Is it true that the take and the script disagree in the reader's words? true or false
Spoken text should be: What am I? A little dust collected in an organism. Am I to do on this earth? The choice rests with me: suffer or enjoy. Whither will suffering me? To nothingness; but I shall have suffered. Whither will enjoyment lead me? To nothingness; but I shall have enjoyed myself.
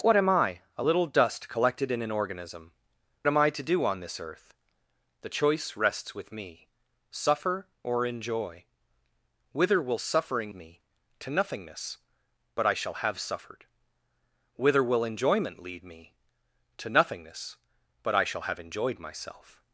false